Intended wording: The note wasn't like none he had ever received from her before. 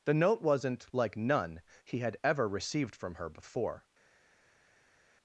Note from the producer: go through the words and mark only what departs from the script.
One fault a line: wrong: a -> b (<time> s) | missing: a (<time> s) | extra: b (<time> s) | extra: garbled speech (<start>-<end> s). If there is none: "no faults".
no faults